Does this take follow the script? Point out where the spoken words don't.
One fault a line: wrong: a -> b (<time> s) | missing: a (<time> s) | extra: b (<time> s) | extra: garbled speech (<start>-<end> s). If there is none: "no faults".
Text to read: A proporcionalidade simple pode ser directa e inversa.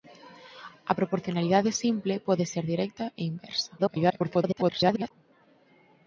extra: garbled speech (3.8-5.1 s)